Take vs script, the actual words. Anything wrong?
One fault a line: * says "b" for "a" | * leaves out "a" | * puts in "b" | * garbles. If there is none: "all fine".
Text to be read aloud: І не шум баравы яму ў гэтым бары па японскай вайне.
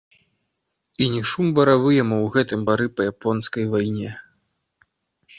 all fine